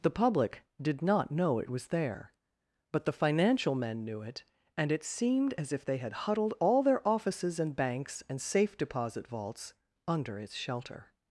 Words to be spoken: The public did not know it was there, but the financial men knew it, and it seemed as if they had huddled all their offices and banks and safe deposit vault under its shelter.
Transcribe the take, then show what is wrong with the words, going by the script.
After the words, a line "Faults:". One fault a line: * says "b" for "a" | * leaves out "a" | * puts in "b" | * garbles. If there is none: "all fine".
The public did not know it was there, but the financial men knew it, and it seemed as if they had huddled all their offices and banks and safe deposit vaults under its shelter.
Faults:
* says "vaults" for "vault"